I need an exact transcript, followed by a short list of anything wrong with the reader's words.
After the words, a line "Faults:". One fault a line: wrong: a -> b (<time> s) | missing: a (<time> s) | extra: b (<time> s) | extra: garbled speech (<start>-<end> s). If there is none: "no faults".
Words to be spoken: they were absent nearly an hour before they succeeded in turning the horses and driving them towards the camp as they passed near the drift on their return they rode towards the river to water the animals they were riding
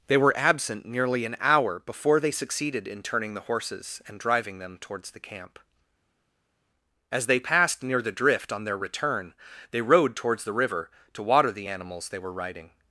they were absent nearly an hour before they succeeded in turning the horses and driving them towards the camp as they passed near the drift on their return they rode towards the river to water the animals they were riding
Faults:
no faults